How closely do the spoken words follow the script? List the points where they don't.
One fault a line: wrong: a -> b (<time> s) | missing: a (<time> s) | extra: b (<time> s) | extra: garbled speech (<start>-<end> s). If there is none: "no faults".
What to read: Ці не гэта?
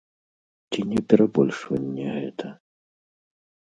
extra: перабольшванне (1.1 s)